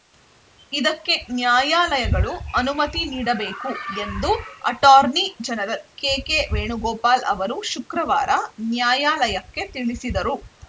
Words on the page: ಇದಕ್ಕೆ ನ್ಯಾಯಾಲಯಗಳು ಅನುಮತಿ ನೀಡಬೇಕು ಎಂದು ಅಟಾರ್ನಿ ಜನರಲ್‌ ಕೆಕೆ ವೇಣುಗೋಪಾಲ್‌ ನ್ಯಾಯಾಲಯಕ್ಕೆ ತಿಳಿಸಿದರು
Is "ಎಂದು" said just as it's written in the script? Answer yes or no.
yes